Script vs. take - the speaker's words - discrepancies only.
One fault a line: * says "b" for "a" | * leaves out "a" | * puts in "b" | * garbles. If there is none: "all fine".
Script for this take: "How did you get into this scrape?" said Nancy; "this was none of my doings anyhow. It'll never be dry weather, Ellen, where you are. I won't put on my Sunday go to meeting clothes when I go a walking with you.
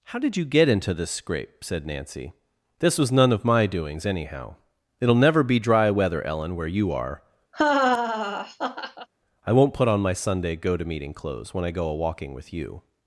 all fine